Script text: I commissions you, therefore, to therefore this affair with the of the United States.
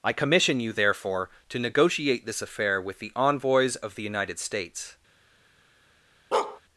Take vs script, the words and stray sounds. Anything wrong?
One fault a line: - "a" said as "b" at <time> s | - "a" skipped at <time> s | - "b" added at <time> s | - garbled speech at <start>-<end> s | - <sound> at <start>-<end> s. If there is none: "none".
- "commissions" said as "commission" at 0.1 s
- "therefore" said as "negotiate" at 1.6 s
- "envoys" added at 3.1 s
- bark at 6.3-6.6 s